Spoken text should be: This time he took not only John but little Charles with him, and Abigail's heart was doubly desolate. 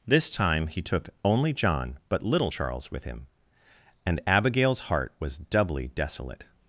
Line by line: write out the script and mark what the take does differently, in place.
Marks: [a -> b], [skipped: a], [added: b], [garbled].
This time he took [skipped: not] only John but little Charles with him, and Abigail's heart was doubly desolate.